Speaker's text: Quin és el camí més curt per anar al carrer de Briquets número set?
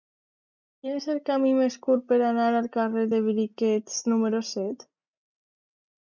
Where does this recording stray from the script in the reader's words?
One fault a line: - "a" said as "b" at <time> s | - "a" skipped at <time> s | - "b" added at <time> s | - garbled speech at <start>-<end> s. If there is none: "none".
none